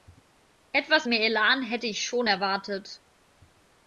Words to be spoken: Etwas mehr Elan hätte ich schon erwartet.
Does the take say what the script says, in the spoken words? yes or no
yes